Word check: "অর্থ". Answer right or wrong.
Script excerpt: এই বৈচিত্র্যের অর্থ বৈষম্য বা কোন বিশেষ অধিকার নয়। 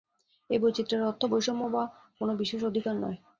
right